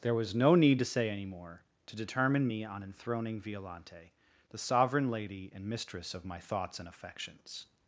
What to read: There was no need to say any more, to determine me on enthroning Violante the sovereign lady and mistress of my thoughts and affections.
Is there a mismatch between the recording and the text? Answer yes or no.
no